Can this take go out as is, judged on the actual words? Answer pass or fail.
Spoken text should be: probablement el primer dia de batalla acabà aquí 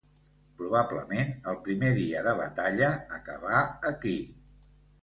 pass